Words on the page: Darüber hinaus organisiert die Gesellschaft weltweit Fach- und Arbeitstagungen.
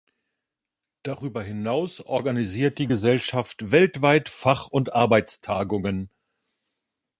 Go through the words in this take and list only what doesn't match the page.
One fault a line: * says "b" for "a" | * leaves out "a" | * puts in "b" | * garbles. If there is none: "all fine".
all fine